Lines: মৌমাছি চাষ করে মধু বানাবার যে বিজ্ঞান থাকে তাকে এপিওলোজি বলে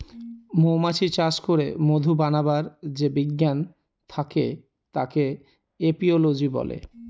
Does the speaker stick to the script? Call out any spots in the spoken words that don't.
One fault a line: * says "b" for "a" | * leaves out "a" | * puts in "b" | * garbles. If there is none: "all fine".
all fine